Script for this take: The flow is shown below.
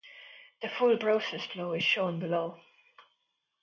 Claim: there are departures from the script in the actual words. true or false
true